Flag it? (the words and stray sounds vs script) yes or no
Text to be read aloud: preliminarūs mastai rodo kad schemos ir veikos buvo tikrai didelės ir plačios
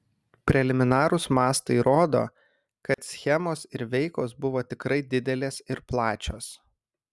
yes